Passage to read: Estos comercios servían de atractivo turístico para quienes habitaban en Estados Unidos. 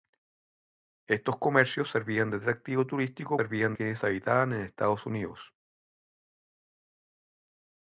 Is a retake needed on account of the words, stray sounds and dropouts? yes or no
yes